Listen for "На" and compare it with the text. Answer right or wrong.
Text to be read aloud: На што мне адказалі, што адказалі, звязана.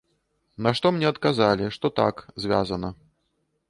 right